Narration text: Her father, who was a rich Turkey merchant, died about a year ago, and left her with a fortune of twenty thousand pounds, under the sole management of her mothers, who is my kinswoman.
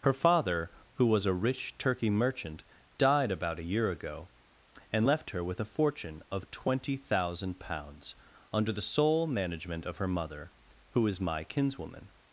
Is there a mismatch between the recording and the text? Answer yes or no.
yes